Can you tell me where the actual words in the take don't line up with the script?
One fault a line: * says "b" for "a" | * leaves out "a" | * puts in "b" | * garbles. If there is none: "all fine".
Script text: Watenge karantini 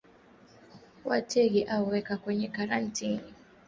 * puts in "au weka kwenye"